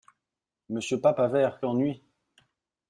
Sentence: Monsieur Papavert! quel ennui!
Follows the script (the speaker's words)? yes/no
no